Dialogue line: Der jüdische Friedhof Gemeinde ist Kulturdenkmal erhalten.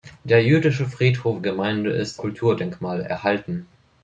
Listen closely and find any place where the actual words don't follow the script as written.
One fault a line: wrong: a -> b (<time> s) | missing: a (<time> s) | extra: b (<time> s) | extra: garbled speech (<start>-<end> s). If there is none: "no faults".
no faults